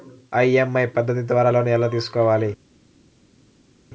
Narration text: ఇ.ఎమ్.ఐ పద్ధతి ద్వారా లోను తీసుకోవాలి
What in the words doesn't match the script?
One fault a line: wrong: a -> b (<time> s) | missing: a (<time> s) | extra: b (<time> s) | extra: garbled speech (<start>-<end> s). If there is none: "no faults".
extra: ఎలా (1.7 s)